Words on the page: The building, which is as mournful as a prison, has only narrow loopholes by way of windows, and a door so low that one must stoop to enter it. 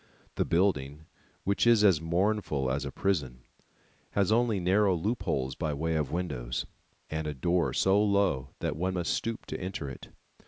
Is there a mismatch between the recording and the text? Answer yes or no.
no